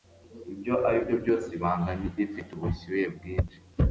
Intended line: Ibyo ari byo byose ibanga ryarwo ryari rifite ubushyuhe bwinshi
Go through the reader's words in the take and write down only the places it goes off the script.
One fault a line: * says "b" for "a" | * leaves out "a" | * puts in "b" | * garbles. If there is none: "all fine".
* leaves out "ryarwo ryari"